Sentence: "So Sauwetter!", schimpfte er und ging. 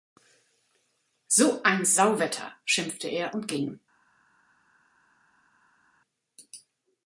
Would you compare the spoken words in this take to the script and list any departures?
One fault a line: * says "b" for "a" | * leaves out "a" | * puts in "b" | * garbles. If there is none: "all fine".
* puts in "ein"